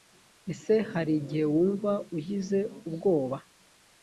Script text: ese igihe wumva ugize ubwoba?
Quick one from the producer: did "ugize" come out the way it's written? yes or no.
yes